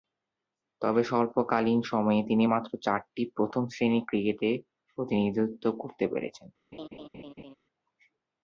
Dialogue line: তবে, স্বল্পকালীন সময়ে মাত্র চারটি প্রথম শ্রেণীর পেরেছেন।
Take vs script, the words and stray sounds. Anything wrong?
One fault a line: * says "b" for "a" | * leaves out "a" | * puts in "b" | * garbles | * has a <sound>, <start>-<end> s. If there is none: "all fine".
* puts in "তিনি"
* puts in "ক্রিকেটে প্রতিনিধিত্ব করতে"
* has a laugh, 6.7-7.6 s